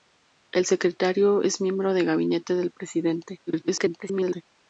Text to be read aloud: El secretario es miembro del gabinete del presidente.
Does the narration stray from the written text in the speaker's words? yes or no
yes